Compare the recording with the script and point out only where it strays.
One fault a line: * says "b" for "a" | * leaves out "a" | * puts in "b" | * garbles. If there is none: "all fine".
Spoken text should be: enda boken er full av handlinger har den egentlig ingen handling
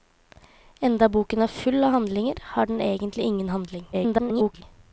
* garbles